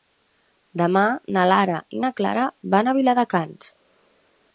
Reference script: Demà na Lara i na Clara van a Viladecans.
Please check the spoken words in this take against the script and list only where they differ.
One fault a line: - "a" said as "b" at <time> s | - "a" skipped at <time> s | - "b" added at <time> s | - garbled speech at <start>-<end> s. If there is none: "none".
none